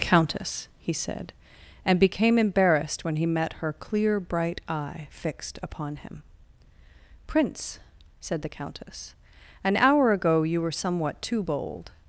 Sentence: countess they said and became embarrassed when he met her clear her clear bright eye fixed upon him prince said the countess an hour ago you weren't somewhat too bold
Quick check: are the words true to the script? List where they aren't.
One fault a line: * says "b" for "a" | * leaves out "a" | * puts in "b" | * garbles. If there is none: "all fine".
* says "he" for "they"
* leaves out "her clear"
* says "were" for "weren't"